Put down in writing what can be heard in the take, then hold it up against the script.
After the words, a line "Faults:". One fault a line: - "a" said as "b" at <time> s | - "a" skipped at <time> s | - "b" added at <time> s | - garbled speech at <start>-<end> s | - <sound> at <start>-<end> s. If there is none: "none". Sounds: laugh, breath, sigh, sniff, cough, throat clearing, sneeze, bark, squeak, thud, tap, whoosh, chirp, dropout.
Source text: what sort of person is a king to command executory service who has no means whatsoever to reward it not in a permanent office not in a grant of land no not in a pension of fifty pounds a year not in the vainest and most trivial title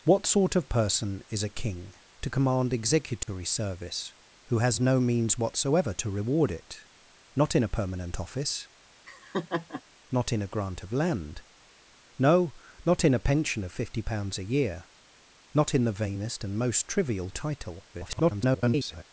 what sort of person is a king to command executory service who has no means whatsoever to reward it not in a permanent office not in a grant of land no not in a pension of fifty pounds a year not in the vainest and most trivial title [garbled]
Faults:
- dropout at 3.2-3.3 s
- laugh at 9.1-9.8 s
- garbled speech at 17.9-19.0 s